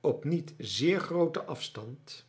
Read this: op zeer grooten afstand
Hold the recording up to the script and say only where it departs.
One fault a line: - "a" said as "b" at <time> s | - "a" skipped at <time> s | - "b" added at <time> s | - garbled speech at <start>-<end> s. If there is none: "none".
- "niet" added at 0.2 s